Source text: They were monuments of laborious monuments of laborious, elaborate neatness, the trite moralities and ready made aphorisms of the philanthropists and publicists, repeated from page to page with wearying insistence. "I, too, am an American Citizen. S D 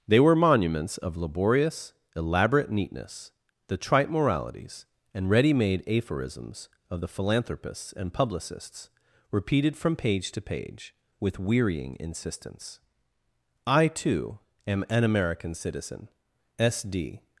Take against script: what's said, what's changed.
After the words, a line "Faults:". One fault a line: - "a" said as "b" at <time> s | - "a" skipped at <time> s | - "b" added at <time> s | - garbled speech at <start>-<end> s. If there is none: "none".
They were monuments of laborious, elaborate neatness, the trite moralities and ready made aphorisms of the philanthropists and publicists, repeated from page to page with wearying insistence. "I, too, am an American Citizen. S D
Faults:
- "monuments of laborious" skipped at 1.9 s